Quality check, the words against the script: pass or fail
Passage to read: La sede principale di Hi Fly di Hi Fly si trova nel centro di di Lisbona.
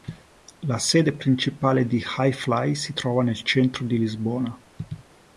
fail